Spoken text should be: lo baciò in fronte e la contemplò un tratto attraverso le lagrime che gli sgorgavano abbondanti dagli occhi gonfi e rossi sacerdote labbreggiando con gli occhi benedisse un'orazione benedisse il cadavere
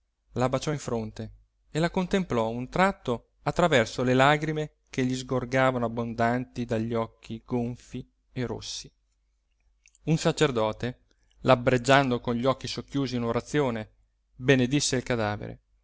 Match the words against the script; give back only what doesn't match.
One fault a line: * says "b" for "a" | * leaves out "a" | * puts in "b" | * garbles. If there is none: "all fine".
* says "la" for "lo"
* puts in "un"
* says "socchiusi" for "benedisse"